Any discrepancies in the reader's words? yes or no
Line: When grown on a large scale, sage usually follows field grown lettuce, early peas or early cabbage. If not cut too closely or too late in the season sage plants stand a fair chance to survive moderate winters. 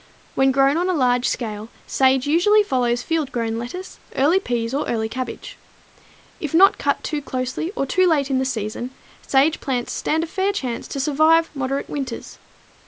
no